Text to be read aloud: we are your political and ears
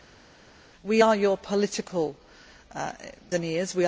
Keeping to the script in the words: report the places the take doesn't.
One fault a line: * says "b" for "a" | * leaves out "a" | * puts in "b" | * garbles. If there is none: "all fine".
all fine